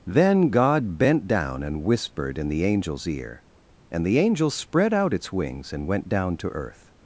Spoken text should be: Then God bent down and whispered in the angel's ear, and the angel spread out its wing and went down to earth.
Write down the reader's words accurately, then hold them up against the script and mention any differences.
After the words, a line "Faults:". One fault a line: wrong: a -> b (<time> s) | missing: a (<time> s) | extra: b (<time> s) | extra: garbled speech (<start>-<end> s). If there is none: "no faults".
Then God bent down and whispered in the angel's ear, and the angel spread out its wings and went down to earth.
Faults:
wrong: wing -> wings (5.3 s)